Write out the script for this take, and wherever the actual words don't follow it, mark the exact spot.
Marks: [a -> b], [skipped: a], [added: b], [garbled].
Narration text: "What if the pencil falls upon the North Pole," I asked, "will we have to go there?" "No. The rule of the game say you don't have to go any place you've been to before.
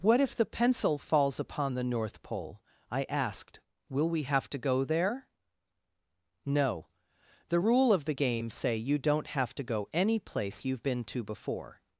"What if the pencil falls upon the North Pole," I asked, "will we have to go there?" "No. The rule of the game say you don't have to go any place you've been to before.